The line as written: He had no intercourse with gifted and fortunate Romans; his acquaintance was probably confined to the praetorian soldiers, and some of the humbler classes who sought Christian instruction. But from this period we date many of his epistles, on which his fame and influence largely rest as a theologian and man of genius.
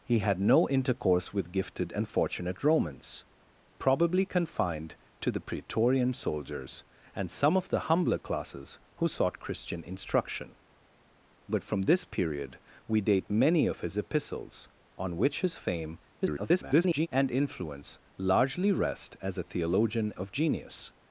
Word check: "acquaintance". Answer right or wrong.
wrong